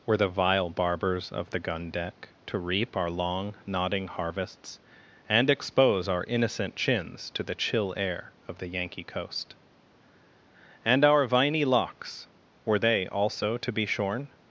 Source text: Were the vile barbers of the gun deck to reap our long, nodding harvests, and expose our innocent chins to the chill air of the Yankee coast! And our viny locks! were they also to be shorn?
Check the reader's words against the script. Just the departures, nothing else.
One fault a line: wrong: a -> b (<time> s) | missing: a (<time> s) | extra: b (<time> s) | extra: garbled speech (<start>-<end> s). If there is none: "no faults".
no faults